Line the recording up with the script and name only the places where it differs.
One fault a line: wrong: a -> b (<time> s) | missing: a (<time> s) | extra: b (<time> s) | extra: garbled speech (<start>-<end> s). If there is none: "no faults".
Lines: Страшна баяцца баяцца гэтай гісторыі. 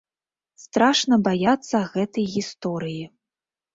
missing: баяцца (1.8 s)